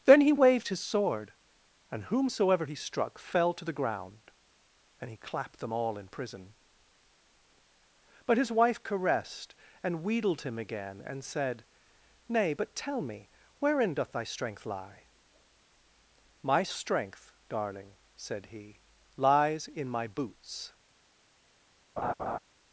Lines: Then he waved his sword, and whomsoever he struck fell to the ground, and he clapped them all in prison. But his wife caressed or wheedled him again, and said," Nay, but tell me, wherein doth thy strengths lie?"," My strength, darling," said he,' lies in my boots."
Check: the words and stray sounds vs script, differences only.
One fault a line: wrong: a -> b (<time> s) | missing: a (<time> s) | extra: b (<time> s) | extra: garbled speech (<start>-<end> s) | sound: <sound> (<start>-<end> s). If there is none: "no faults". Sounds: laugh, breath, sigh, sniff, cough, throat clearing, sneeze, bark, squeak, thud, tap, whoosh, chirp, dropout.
wrong: or -> and (9.8 s)
wrong: strengths -> strength (14.2 s)
sound: laugh (22.0-22.4 s)